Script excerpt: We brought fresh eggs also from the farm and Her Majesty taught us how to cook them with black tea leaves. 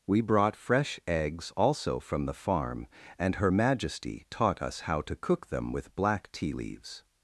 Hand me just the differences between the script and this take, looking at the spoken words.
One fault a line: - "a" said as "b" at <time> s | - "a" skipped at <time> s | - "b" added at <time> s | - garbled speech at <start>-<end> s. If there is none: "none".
none